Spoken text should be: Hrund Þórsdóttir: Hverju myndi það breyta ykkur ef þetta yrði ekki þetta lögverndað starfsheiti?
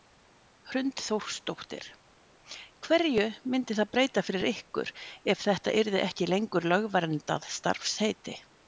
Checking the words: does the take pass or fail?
fail